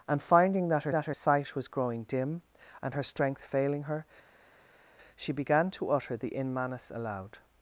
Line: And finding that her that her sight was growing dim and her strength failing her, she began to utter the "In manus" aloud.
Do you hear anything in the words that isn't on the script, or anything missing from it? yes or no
no